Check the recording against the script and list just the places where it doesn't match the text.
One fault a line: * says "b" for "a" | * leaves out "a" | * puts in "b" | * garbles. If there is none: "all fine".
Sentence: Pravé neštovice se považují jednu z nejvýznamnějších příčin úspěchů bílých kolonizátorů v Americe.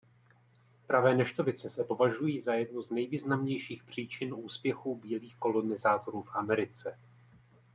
* puts in "za"